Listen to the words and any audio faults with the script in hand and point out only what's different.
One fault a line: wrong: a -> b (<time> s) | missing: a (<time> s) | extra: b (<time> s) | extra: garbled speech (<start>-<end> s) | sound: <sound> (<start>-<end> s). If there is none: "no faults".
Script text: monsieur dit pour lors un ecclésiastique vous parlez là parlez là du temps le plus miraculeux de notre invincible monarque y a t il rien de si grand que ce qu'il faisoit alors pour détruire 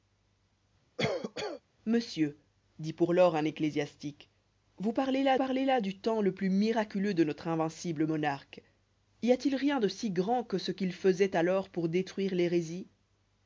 sound: cough (1.0-1.6 s)